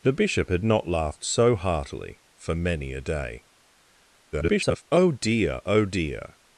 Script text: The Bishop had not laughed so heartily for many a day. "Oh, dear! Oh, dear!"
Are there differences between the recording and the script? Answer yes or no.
yes